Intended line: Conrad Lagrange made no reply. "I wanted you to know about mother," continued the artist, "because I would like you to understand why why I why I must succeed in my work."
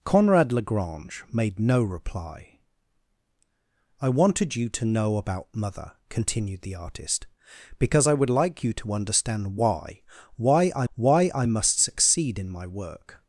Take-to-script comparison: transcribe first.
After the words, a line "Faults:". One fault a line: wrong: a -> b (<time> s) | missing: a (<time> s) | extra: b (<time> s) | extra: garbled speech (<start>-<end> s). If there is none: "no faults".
Conrad Lagrange made no reply. "I wanted you to know about mother," continued the artist, "because I would like you to understand why why I why I must succeed in my work."
Faults:
no faults